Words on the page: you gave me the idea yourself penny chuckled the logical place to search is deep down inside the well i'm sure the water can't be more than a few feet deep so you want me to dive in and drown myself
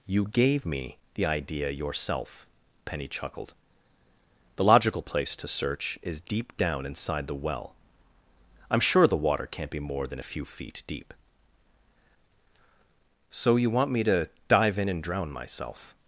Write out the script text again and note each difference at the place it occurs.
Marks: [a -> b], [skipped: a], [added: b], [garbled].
you gave me the idea yourself penny chuckled the logical place to search is deep down inside the well i'm sure the water can't be more than a few feet deep so you want me to dive in and drown myself